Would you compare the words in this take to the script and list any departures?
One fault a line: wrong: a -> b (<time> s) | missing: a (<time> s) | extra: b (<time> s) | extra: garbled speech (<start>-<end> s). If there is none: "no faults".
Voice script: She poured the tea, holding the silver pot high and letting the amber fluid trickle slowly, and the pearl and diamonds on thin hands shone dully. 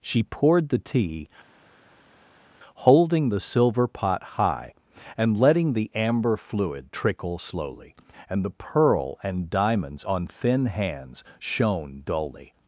no faults